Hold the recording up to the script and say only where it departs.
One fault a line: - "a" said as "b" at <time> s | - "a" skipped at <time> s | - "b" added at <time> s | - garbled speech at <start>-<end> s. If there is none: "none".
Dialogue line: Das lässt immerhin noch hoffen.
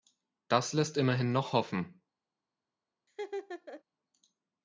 none